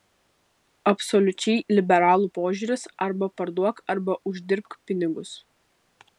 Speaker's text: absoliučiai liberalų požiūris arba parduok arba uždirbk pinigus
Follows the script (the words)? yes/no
yes